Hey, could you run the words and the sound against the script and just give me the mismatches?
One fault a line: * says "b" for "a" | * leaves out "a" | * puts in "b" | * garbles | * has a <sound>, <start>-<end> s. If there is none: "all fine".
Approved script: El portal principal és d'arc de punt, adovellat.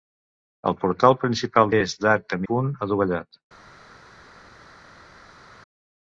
all fine